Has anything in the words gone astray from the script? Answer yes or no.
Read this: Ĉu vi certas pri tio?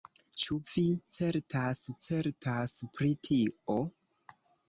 yes